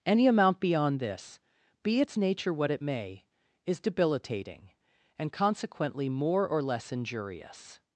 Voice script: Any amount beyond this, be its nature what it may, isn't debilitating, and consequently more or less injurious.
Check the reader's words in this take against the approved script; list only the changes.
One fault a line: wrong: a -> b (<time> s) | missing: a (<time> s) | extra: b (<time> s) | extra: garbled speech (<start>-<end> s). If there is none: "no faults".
wrong: isn't -> is (3.6 s)